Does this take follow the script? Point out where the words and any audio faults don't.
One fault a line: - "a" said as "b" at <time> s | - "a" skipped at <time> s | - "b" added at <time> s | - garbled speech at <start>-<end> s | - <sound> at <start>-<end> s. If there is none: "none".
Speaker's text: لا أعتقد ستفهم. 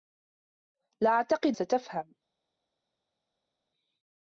none